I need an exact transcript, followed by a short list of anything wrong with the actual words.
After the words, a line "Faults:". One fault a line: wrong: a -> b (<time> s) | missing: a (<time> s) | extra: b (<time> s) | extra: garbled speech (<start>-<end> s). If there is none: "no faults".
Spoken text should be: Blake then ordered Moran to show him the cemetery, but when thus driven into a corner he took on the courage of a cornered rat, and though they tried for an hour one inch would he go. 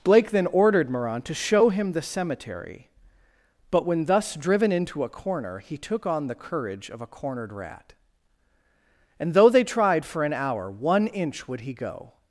Blake then ordered Moran to show him the cemetery, but when thus driven into a corner he took on the courage of a cornered rat, and though they tried for an hour one inch would he go.
Faults:
no faults